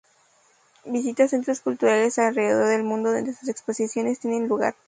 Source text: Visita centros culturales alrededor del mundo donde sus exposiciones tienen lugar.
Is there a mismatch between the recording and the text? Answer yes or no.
no